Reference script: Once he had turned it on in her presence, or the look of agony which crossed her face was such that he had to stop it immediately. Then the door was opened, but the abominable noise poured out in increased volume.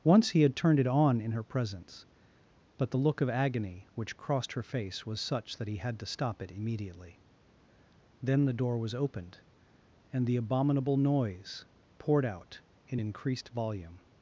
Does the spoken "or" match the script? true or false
false